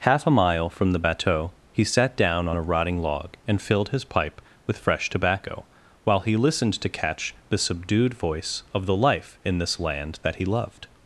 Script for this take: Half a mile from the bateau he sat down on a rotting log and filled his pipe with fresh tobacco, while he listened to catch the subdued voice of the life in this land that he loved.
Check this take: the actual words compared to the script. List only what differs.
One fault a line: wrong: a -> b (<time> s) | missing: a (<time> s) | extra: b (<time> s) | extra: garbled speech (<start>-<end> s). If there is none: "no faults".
no faults